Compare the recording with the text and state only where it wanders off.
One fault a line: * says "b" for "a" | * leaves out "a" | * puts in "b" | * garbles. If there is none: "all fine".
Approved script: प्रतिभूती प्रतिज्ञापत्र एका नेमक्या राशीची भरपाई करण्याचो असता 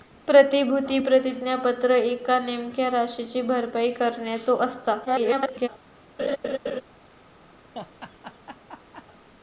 * garbles